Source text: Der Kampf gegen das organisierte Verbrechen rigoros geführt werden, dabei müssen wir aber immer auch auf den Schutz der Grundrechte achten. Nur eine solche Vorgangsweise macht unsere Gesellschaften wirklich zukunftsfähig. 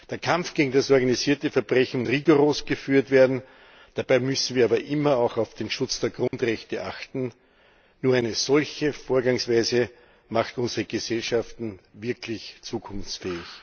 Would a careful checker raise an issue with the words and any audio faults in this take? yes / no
yes